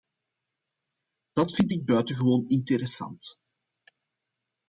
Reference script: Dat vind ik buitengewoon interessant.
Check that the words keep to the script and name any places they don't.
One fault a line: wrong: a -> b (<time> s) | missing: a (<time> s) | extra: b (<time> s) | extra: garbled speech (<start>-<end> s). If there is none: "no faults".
no faults